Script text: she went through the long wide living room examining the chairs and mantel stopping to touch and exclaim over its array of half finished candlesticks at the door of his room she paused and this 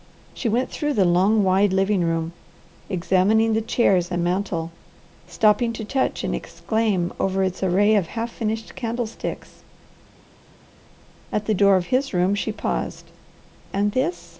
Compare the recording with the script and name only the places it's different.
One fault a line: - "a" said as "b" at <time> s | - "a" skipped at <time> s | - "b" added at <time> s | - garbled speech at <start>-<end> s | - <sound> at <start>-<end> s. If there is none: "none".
none